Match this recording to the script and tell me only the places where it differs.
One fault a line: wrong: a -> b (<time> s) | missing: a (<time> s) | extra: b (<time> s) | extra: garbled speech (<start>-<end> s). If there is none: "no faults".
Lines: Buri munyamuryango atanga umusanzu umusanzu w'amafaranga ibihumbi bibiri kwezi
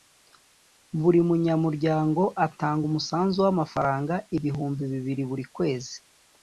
missing: umusanzu (3.4 s)
extra: buri (5.3 s)